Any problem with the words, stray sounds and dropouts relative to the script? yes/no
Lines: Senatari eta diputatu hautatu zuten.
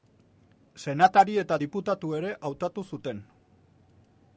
yes